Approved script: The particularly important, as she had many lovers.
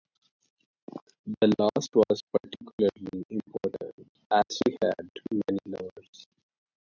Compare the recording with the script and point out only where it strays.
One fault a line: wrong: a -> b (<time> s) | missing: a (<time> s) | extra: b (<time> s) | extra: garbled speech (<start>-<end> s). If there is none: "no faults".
extra: last was (1.6 s)